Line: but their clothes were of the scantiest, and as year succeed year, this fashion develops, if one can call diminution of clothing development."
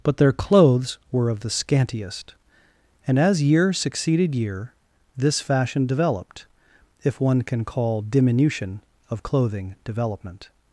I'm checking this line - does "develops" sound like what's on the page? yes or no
no